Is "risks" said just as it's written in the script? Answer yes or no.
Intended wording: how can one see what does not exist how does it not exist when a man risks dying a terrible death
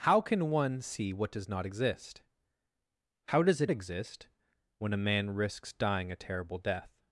yes